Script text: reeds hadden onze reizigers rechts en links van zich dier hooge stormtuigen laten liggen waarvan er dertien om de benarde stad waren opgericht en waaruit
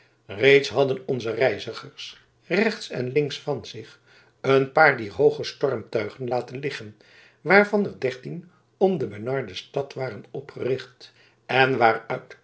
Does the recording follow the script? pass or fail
fail